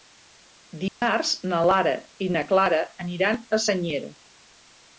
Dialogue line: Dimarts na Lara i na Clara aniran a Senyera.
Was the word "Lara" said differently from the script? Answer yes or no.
no